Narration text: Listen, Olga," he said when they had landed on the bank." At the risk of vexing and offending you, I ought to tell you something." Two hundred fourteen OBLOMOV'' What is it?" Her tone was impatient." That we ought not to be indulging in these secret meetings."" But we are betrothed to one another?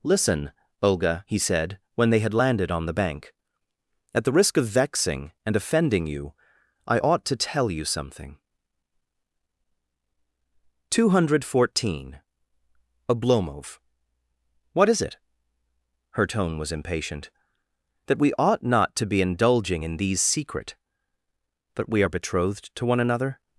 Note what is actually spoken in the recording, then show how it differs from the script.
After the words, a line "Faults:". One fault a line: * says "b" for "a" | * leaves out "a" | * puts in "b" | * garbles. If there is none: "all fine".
Listen, Olga," he said when they had landed on the bank." At the risk of vexing and offending you, I ought to tell you something." Two hundred fourteen OBLOMOV'' What is it?" Her tone was impatient." That we ought not to be indulging in these secret."" But we are betrothed to one another?
Faults:
* leaves out "meetings"